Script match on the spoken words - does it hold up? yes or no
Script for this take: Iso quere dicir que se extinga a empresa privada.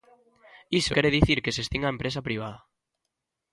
yes